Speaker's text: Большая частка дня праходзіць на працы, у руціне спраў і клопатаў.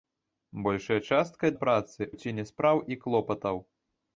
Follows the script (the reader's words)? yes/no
no